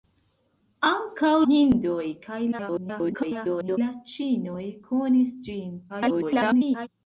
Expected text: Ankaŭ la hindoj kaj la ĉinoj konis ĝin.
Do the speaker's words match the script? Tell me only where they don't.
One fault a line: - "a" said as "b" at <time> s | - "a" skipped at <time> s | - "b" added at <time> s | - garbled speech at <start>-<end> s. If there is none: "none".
- "la" skipped at 1.3 s
- garbled speech at 2.5-3.8 s
- garbled speech at 5.9-6.9 s